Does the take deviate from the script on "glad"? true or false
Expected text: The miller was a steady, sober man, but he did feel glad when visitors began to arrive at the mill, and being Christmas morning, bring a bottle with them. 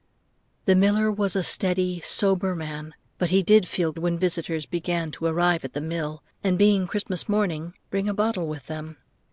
true